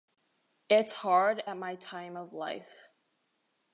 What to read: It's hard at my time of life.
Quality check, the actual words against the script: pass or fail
pass